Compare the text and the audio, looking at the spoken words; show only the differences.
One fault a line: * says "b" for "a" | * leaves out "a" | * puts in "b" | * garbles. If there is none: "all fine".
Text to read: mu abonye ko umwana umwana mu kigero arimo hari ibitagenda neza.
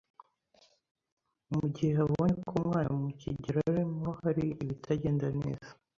* puts in "gihe"
* leaves out "umwana"